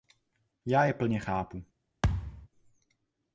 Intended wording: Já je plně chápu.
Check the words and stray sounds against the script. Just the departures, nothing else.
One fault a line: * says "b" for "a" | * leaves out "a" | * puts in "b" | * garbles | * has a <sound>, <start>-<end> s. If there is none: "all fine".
* has a thud, 2.0-2.5 s